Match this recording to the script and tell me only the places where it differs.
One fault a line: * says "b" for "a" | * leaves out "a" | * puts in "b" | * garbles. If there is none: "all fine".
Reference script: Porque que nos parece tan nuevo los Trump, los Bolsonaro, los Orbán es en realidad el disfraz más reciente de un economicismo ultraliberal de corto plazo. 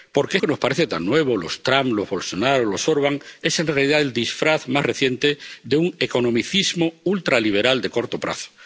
all fine